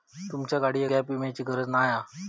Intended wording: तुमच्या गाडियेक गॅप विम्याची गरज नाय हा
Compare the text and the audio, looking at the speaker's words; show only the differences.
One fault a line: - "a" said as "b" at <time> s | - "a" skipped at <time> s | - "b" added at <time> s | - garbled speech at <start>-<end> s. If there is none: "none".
none